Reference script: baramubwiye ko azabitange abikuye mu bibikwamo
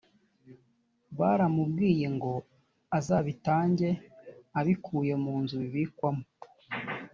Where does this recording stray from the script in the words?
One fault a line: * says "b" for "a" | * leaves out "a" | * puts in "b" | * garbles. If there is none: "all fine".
* says "ngo" for "ko"
* puts in "nzu"